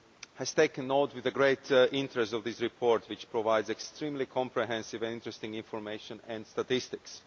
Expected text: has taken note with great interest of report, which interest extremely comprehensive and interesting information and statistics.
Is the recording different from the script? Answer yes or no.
yes